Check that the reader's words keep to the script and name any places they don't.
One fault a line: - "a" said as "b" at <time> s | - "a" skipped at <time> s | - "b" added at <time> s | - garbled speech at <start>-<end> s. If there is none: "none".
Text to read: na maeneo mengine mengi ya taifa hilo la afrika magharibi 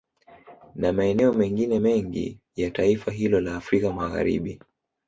none